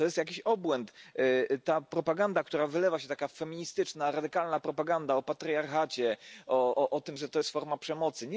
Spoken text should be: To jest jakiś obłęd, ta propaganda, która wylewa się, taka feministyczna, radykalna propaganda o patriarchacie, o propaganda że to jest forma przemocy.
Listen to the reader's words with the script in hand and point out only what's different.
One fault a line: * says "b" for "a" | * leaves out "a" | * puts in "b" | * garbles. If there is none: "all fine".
* says "tym" for "propaganda"